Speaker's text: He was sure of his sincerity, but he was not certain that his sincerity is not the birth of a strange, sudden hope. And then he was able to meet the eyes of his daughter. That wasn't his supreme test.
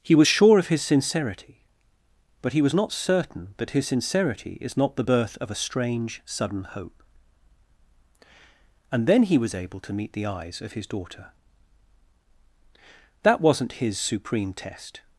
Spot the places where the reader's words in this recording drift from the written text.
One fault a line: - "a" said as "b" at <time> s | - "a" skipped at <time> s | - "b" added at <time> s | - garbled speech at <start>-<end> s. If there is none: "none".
none